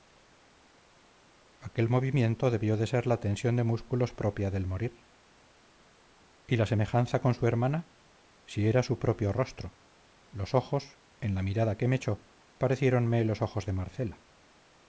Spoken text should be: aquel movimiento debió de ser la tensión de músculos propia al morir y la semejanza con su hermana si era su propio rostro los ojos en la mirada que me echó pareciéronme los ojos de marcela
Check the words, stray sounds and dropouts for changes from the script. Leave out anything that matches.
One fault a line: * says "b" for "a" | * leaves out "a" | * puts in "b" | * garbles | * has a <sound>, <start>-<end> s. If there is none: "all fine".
* says "del" for "al"